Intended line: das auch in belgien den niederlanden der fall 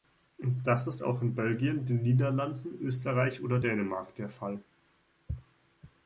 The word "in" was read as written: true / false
true